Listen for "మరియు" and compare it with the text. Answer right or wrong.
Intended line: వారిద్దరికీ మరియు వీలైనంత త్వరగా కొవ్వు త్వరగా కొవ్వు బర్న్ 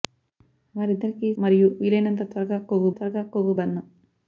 right